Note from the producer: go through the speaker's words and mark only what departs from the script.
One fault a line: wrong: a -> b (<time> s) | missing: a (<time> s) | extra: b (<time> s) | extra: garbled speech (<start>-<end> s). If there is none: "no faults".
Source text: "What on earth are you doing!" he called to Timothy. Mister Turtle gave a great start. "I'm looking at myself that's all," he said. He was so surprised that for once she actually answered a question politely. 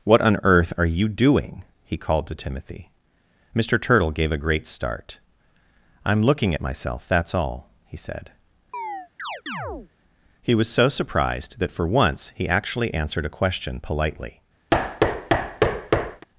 wrong: she -> he (12.4 s)